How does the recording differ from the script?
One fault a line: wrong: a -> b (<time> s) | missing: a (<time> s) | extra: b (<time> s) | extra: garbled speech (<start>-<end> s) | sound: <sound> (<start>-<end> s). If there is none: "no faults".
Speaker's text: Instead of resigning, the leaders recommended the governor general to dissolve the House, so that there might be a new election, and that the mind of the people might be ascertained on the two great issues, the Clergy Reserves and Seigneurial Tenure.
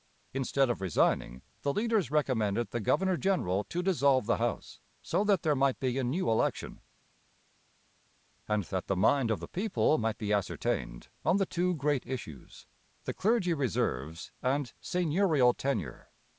no faults